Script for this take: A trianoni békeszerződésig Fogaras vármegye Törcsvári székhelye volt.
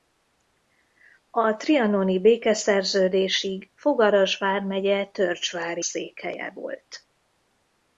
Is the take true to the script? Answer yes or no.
yes